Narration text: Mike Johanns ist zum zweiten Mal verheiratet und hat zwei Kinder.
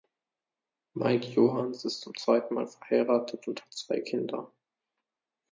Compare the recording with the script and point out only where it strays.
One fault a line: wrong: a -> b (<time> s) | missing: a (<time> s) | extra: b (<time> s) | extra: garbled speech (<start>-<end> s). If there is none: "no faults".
no faults